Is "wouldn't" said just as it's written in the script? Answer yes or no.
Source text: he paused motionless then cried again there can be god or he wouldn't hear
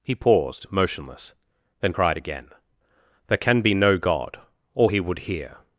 no